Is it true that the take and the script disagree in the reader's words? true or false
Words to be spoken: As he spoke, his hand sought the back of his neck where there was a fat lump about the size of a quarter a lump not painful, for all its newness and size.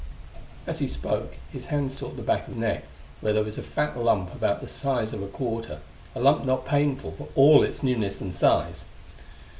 true